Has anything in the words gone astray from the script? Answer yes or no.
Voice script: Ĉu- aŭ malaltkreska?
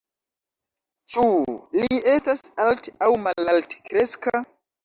yes